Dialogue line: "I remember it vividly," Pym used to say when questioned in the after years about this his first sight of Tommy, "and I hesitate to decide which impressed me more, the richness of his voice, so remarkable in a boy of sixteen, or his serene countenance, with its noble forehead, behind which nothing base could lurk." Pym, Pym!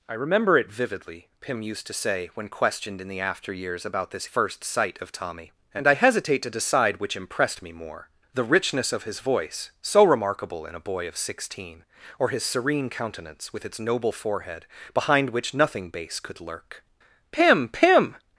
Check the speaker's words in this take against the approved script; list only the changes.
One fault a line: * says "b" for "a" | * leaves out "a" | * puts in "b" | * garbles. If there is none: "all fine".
* leaves out "his"